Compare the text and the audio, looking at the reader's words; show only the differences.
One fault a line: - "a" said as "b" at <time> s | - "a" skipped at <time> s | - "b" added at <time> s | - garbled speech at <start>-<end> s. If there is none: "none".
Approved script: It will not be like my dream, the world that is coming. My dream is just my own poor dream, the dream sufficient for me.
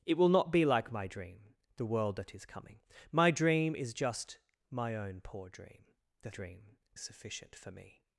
none